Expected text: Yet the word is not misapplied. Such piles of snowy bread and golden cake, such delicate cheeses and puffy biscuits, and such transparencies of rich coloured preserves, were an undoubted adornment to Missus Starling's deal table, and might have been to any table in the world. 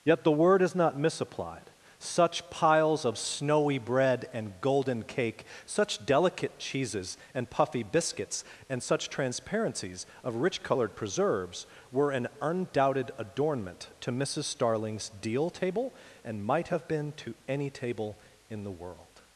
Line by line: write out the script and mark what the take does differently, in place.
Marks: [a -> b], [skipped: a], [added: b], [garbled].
Yet the word is not misapplied. Such piles of snowy bread and golden cake, such delicate cheeses and puffy biscuits, and such transparencies of rich coloured preserves, were an undoubted adornment to Missus Starling's deal table, and might have been to any table in the world.